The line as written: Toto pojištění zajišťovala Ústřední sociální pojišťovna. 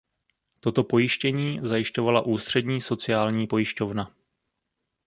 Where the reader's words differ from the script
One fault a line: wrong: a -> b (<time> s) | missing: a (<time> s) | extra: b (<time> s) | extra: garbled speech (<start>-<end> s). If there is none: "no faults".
no faults